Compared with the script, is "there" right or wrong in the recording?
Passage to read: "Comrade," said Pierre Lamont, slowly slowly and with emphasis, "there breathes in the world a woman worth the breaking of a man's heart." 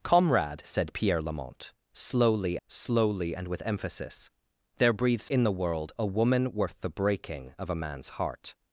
right